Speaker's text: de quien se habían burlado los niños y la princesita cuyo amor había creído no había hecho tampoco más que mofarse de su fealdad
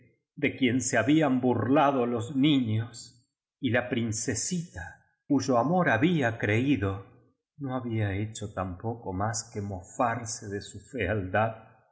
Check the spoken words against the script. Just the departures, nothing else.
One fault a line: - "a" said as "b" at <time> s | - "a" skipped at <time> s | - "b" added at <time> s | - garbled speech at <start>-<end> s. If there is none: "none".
none